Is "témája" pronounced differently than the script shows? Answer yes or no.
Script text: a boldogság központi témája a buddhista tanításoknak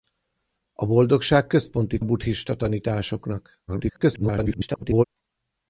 yes